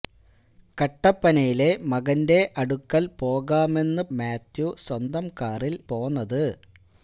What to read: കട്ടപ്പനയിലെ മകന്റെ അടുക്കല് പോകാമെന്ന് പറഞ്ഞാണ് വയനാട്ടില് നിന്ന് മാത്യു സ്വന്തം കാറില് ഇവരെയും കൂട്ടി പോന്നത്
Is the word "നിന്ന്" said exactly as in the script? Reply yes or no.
no